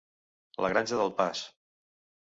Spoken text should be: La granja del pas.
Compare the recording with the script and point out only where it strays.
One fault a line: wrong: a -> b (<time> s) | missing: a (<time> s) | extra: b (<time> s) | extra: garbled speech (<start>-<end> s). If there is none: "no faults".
no faults